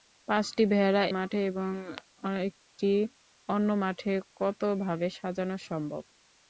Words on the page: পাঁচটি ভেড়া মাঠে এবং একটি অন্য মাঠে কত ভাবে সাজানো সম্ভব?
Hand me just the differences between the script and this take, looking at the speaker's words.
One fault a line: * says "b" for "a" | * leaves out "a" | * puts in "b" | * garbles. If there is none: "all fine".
all fine